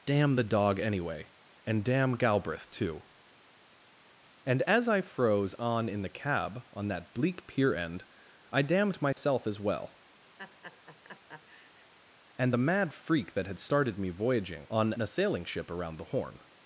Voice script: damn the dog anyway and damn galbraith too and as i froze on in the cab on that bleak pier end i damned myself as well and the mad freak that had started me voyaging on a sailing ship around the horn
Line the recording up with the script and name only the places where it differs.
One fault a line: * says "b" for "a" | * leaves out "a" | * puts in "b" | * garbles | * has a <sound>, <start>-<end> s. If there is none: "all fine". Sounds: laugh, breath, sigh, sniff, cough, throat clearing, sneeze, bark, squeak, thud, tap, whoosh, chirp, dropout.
* has a dropout, 9.1-9.2 s
* has a laugh, 10.4-11.9 s